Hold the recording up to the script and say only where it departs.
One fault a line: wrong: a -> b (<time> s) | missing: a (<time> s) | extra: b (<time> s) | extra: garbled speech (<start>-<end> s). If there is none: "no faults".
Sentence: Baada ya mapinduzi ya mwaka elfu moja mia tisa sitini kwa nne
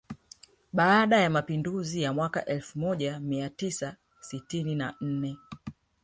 wrong: kwa -> na (4.8 s)